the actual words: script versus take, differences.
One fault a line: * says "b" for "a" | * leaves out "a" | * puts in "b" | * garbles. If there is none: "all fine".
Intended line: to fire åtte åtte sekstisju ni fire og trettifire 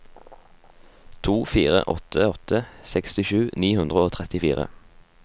* says "hundre" for "fire"